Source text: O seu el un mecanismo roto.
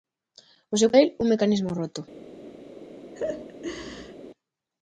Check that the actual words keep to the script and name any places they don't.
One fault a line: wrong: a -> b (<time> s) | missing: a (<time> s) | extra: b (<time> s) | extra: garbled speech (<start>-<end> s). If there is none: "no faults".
no faults